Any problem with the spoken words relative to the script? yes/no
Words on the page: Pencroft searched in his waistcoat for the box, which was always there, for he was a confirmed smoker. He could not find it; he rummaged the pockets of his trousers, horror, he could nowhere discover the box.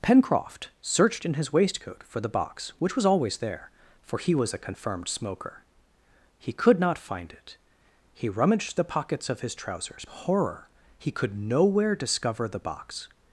no